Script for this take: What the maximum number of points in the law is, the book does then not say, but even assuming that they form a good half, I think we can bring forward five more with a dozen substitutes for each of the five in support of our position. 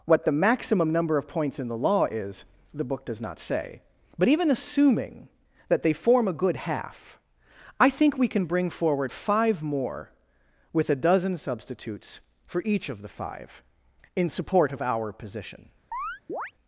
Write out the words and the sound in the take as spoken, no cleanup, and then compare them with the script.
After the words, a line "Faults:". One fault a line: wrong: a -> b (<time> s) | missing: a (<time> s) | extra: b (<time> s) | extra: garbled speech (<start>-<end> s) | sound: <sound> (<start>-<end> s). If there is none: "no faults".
What the maximum number of points in the law is, the book does not say, but even assuming that they form a good half, I think we can bring forward five more with a dozen substitutes for each of the five in support of our position.
Faults:
missing: then (3.2 s)
sound: chirp (15.9-16.5 s)